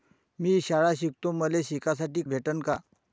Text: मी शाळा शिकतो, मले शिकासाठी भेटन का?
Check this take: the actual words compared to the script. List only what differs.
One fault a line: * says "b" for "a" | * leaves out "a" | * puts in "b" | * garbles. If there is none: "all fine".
all fine